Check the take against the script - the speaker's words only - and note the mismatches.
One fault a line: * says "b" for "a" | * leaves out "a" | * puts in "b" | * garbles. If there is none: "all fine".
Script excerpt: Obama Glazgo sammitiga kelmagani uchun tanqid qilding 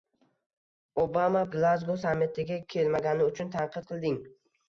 all fine